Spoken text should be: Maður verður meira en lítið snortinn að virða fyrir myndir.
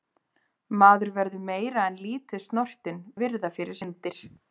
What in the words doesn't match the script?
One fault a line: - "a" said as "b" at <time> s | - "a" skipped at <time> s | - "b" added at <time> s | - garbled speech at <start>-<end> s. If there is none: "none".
none